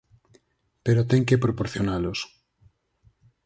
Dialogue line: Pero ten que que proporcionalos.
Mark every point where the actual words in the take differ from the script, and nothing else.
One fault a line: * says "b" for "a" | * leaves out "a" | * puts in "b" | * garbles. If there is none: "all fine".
* leaves out "que"